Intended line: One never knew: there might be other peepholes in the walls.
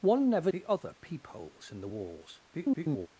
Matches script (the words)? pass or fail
fail